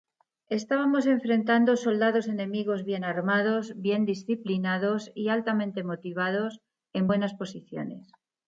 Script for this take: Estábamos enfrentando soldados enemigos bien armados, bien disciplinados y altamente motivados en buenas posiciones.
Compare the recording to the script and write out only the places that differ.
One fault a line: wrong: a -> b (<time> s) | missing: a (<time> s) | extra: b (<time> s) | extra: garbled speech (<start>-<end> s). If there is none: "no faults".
no faults